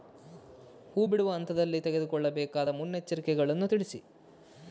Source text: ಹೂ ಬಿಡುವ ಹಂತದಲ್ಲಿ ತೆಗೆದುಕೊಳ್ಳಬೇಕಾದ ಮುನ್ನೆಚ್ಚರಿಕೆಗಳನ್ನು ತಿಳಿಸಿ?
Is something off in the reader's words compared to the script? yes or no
no